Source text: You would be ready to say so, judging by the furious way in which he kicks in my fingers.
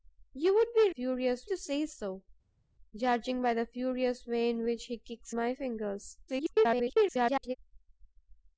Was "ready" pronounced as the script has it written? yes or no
no